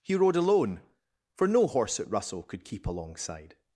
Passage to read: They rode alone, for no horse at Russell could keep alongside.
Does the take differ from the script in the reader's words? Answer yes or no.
yes